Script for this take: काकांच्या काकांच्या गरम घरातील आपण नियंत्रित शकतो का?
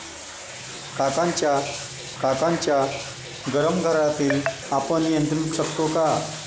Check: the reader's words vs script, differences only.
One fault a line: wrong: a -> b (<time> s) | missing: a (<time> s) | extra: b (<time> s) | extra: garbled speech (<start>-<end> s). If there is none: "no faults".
no faults